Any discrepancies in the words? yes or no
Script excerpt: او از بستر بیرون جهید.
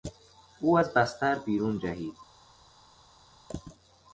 no